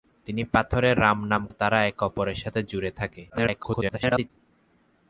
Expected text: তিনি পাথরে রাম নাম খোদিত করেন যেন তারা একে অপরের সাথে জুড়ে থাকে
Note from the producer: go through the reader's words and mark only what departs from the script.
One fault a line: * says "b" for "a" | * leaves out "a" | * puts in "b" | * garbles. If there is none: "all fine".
* leaves out "খোদিত করেন যেন"
* garbles